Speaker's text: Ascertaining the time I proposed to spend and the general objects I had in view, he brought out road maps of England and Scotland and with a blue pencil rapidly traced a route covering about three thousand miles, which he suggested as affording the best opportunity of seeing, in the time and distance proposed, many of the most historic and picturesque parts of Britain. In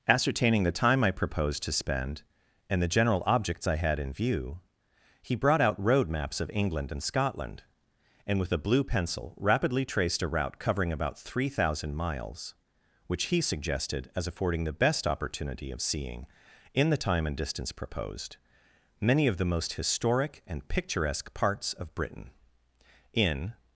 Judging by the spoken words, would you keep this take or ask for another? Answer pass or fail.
pass